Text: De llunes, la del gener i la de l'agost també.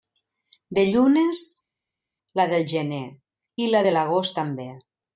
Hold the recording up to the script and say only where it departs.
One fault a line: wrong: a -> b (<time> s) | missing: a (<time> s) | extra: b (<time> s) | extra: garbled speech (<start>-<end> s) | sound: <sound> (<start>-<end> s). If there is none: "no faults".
no faults